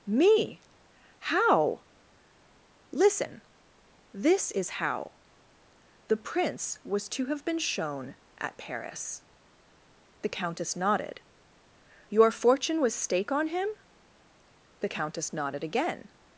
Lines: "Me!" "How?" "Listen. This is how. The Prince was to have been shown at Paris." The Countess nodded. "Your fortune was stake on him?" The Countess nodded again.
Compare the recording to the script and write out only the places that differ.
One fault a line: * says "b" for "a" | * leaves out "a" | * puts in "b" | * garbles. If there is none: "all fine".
all fine